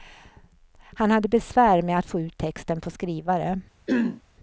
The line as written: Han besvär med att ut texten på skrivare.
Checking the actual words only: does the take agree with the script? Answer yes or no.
no